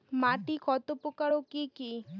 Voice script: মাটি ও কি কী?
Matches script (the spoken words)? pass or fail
fail